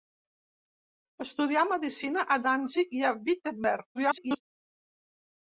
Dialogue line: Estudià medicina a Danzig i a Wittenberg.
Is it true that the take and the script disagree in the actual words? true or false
true